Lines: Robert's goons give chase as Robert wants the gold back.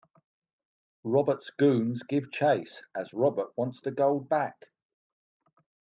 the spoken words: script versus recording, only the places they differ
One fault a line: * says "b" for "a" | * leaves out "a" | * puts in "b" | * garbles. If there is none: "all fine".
all fine